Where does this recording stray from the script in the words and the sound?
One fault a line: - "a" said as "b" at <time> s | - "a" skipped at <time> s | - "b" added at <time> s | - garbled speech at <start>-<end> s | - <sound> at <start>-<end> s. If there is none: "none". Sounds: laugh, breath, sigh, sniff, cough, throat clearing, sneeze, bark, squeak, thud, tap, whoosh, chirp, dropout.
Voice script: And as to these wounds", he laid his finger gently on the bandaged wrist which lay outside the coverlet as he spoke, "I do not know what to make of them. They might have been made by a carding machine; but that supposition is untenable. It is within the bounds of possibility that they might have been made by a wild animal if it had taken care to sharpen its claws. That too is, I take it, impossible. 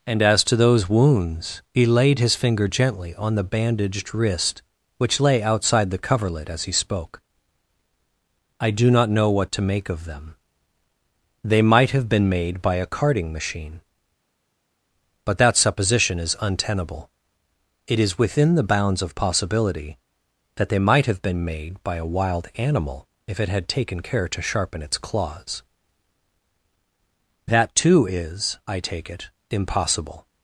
- "these" said as "those" at 0.6 s